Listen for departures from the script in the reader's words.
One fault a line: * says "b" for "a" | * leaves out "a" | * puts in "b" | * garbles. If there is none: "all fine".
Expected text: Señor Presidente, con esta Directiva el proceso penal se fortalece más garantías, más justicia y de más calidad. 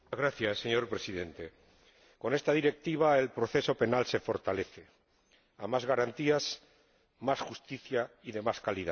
* puts in "a"